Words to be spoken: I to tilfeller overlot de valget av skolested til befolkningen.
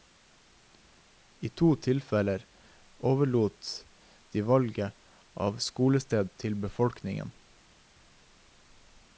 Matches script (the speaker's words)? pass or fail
pass